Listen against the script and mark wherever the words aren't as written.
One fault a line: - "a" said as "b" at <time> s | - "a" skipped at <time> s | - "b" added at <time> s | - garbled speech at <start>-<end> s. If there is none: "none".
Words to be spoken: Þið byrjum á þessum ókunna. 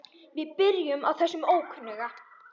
- "Þið" said as "Við" at 0.4 s